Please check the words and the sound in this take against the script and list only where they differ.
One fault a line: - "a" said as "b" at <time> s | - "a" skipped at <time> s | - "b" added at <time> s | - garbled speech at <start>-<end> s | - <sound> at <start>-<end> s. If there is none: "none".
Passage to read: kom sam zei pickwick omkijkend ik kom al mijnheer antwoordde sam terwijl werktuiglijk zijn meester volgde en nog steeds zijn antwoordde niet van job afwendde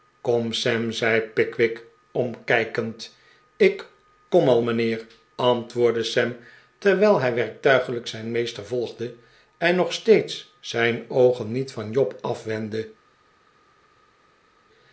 - "hij" added at 7.2 s
- "antwoordde" said as "oogen" at 11.1 s